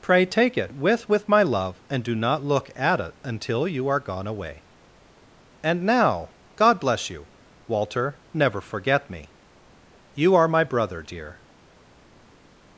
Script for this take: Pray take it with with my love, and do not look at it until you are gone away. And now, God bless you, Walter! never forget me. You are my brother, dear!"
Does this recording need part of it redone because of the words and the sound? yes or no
no